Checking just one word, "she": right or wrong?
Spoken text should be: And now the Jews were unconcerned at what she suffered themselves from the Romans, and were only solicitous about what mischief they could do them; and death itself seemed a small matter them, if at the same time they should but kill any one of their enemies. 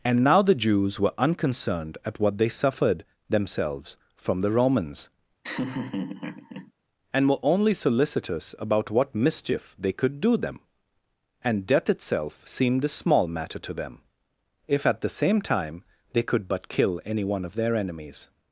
wrong